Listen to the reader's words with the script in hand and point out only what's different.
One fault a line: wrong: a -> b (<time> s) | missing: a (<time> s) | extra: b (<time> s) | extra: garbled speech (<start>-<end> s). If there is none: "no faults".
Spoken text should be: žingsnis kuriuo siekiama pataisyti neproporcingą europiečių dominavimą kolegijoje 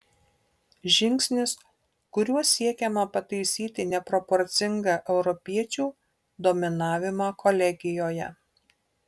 no faults